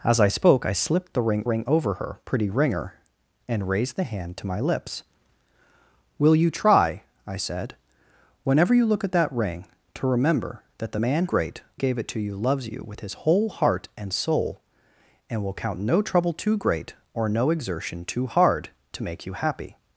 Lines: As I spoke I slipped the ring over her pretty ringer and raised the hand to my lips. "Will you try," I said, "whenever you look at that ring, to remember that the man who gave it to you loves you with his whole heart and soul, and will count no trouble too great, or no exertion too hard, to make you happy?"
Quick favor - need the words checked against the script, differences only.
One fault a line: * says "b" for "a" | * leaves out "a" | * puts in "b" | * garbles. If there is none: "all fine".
* puts in "ring"
* says "great" for "who"